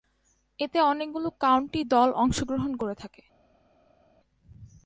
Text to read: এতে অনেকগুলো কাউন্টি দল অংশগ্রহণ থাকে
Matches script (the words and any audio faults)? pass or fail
fail